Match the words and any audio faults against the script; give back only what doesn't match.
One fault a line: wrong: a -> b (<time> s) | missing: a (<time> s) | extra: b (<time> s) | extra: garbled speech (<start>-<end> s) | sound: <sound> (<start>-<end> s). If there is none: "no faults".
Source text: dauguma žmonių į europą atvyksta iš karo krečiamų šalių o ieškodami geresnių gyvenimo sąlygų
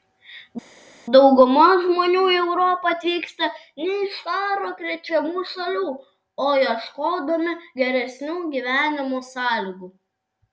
extra: ne (3.8 s)